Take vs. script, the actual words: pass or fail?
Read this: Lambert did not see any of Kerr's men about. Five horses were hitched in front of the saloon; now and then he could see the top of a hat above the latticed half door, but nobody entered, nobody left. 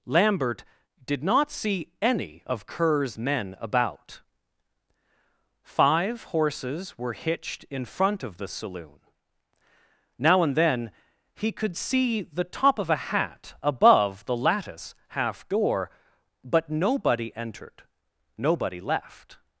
fail